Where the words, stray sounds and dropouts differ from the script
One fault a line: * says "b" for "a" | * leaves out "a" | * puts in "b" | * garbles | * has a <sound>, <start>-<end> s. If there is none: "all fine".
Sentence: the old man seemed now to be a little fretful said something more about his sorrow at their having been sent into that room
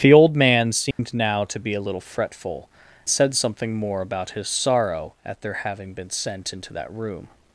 * has a dropout, 0.9-1.0 s